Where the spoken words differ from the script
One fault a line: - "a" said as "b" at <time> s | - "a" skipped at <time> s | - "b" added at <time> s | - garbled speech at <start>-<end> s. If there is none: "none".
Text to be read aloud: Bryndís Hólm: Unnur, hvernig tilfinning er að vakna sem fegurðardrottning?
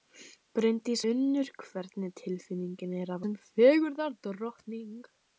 - "Hólm" skipped at 1.0 s
- "vakna" skipped at 3.3 s